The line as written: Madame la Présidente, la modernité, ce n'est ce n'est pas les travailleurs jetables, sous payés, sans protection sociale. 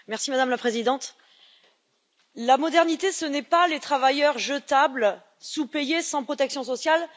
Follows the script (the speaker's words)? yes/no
no